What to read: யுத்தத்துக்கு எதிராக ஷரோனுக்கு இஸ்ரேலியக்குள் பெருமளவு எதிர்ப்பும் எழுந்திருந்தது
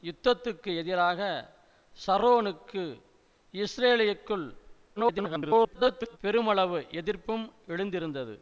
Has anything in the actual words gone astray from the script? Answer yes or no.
yes